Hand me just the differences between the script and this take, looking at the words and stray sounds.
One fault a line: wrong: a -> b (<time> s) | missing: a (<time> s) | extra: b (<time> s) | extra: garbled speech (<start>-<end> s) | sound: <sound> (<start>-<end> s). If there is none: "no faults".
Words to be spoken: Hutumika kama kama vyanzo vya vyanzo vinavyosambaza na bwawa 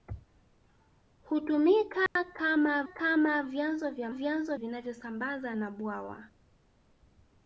sound: dropout (2.1-2.2 s)